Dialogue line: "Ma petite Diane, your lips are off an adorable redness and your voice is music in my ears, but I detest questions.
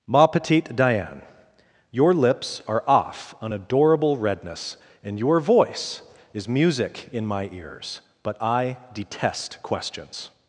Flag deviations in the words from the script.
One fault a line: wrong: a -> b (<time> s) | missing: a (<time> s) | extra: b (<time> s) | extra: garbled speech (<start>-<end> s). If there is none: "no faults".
no faults